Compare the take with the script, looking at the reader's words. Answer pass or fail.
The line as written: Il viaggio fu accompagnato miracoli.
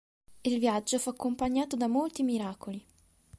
fail